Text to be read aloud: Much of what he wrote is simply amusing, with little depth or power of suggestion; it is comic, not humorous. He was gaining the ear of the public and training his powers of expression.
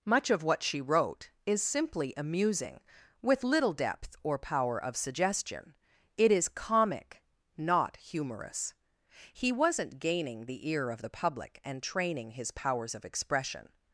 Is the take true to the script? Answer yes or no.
no